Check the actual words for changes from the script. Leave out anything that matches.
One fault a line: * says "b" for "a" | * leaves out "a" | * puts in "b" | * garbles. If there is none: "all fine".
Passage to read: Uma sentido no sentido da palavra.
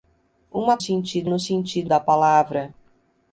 all fine